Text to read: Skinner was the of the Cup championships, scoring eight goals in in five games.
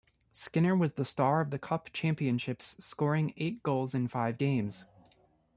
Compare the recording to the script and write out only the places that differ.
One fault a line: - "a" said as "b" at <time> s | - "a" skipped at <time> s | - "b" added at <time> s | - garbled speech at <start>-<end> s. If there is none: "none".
- "star" added at 1.1 s
- "in" skipped at 4.1 s